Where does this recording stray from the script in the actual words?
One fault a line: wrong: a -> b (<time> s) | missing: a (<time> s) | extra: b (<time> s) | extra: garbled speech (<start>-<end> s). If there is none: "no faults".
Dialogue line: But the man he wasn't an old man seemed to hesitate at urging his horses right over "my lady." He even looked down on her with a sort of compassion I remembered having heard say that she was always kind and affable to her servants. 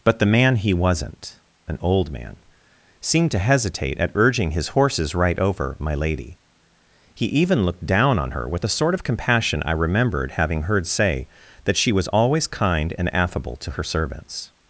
no faults